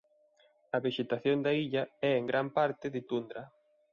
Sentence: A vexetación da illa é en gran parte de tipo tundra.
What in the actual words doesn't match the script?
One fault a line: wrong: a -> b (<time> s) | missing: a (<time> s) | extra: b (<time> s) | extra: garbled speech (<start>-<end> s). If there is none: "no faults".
missing: tipo (3.0 s)